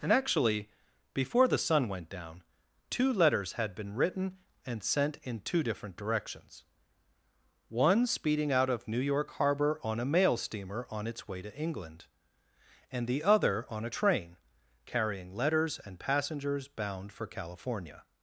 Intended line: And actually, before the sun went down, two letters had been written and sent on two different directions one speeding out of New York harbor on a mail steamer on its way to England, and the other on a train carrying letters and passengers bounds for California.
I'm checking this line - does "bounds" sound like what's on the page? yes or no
no